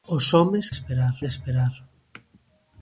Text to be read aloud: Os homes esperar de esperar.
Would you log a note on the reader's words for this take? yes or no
no